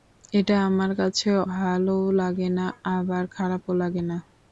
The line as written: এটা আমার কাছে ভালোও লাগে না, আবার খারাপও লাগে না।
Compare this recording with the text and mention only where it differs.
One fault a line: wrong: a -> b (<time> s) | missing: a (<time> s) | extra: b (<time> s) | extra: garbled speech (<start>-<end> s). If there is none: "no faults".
no faults